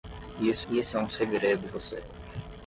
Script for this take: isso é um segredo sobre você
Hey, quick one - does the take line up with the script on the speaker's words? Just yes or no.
no